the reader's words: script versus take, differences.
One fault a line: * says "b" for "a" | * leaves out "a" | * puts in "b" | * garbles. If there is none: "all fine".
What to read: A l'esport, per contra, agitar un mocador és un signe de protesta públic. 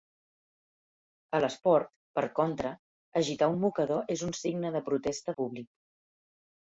all fine